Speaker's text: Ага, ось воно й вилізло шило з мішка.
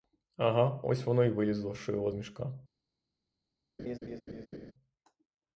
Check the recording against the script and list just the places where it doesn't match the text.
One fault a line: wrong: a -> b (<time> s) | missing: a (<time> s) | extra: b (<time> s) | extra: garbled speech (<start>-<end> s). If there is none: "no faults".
no faults